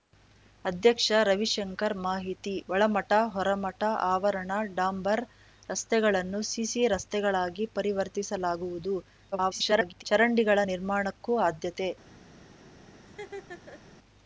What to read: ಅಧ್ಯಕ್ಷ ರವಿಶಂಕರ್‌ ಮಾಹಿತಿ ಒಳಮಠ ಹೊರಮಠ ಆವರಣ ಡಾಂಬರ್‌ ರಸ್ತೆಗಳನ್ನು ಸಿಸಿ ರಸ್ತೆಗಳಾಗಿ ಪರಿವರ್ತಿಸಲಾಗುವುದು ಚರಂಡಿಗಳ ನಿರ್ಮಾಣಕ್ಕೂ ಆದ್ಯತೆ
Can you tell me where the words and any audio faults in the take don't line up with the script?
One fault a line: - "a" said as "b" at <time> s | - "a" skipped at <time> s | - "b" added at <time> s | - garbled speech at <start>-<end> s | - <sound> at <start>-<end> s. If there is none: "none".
- garbled speech at 9.3-10.0 s
- laugh at 13.1-13.8 s